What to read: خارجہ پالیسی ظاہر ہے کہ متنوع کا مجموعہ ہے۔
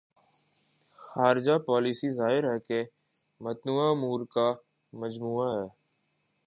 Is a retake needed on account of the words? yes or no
yes